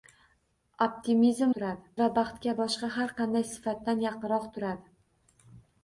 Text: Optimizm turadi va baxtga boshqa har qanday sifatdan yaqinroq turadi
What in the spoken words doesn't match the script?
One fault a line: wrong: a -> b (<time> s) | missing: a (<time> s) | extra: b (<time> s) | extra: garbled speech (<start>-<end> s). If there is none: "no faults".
no faults